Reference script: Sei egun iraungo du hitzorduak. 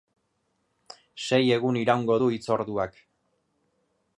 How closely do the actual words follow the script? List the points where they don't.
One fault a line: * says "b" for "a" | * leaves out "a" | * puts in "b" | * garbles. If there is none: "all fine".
all fine